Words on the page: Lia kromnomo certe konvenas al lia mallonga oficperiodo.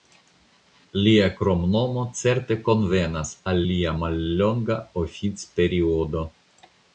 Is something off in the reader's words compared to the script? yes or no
no